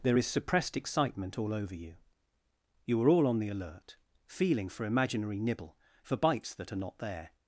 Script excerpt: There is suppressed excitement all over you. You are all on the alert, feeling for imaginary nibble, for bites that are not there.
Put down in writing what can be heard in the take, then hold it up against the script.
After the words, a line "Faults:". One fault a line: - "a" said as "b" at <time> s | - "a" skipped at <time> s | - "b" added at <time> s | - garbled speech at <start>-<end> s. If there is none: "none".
There is suppressed excitement all over you. You are all on the alert, feeling for imaginary nibble, for bites that are not there.
Faults:
none